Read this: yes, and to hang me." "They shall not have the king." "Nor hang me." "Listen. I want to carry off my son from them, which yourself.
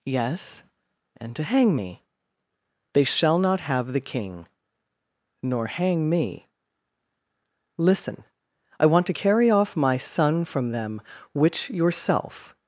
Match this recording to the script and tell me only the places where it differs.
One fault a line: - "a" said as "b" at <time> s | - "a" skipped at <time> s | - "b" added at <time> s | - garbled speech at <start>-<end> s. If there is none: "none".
none